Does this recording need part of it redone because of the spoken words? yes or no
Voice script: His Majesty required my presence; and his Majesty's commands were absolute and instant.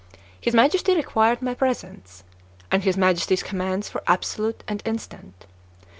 no